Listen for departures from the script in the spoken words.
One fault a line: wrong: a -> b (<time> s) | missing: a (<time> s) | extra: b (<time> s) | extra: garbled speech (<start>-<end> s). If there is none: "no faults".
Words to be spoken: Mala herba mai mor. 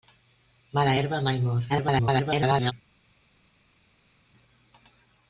extra: garbled speech (1.7-2.7 s)